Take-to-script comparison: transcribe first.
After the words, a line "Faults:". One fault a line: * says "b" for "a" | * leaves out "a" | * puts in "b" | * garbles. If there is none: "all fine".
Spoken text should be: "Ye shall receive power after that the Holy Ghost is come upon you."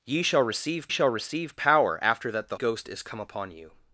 "Ye shall receive shall receive power after that the Ghost is come upon you."
Faults:
* puts in "shall receive"
* leaves out "Holy"